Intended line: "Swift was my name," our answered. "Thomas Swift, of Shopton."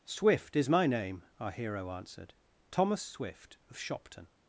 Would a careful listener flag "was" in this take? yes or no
yes